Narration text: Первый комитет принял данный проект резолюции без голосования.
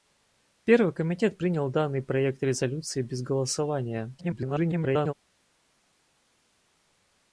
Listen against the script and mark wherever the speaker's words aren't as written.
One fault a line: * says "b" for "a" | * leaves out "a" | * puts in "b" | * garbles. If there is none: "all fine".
* garbles